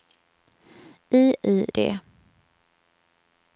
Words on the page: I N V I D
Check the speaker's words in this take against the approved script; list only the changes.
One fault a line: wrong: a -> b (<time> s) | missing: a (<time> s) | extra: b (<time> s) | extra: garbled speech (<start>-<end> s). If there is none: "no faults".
missing: N V (1.4 s)